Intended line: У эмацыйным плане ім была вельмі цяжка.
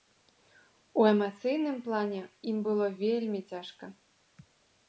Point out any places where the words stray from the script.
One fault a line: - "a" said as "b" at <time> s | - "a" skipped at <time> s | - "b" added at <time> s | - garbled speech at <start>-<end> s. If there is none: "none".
- "была" said as "было" at 2.7 s